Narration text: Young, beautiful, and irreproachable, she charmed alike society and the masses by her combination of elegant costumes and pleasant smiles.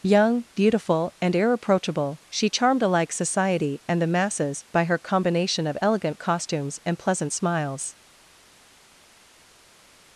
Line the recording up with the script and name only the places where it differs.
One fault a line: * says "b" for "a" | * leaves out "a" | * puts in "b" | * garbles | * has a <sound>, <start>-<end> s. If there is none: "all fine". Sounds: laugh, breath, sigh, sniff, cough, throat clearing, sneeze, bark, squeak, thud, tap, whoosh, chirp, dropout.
all fine